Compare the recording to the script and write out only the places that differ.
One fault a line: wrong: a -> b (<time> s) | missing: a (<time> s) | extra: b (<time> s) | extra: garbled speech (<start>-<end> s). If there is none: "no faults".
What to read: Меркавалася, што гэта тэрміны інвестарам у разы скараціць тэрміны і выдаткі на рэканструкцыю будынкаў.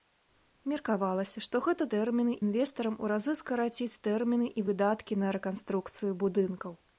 no faults